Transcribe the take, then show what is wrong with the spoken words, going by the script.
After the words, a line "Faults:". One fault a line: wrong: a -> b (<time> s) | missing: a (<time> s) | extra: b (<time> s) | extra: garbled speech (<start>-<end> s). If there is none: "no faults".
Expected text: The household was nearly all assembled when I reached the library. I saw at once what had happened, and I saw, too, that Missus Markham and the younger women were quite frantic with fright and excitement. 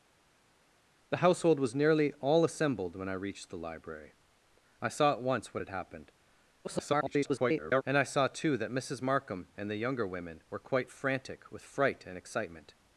The household was nearly all assembled when I reached the library. I saw at once what had happened, [garbled] and I saw, too, that Missus Markham and the younger women were quite frantic with fright and excitement.
Faults:
extra: garbled speech (6.6-7.8 s)